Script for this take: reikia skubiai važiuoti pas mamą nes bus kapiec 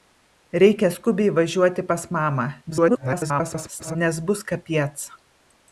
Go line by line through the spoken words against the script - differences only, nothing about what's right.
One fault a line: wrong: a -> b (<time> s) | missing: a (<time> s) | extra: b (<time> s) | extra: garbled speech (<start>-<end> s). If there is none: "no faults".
extra: garbled speech (2.7-4.0 s)